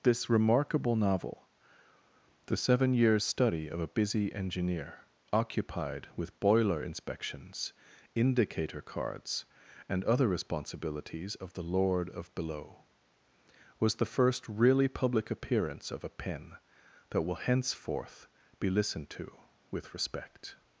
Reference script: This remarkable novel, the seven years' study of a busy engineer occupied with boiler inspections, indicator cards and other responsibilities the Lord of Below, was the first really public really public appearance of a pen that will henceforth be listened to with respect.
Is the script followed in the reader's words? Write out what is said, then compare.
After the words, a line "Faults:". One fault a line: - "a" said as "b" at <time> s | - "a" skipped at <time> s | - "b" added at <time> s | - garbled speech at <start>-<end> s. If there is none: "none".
This remarkable novel, the seven years' study of a busy engineer occupied with boiler inspections, indicator cards and other responsibilities of the Lord of Below, was the first really public appearance of a pen that will henceforth be listened to with respect.
Faults:
- "of" added at 11.3 s
- "really public" skipped at 15.3 s